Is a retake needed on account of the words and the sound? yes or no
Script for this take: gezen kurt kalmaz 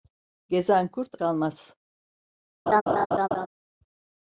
yes